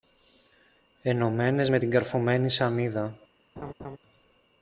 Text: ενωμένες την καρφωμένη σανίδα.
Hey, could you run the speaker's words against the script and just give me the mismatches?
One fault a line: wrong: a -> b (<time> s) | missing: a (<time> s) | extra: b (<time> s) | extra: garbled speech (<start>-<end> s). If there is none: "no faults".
extra: με (1.7 s)